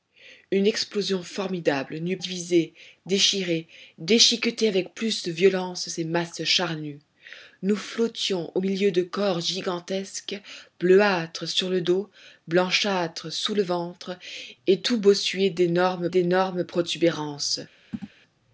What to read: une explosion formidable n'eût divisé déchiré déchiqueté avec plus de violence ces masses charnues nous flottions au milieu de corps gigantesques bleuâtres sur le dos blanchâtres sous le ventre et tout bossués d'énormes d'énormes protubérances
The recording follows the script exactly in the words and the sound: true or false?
false